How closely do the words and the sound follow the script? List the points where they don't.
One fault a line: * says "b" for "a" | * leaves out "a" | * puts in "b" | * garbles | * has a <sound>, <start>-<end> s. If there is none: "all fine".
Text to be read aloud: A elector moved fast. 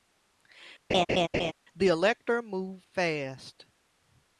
* has a laugh, 0.9-1.5 s
* says "The" for "A"